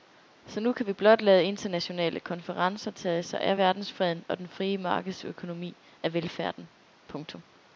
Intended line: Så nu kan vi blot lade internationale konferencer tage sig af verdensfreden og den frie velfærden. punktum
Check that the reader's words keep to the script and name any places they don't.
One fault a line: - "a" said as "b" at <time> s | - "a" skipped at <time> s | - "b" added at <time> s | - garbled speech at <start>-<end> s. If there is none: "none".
- "markedsøkonomi af" added at 4.8 s